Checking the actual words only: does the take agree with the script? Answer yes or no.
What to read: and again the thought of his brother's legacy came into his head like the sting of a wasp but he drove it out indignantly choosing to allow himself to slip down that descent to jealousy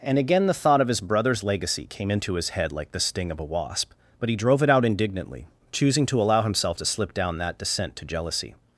yes